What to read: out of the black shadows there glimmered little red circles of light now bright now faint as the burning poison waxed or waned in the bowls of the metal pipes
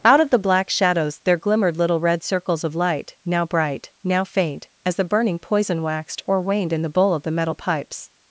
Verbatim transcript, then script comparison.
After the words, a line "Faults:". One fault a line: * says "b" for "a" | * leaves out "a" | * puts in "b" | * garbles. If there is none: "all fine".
out of the black shadows there glimmered little red circles of light now bright now faint as the burning poison waxed or waned in the bowl of the metal pipes
Faults:
* says "bowl" for "bowls"